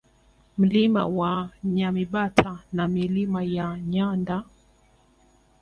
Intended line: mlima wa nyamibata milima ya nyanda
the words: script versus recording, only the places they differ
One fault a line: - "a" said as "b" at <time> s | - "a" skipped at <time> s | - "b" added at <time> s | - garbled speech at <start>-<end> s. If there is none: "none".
- "na" added at 2.7 s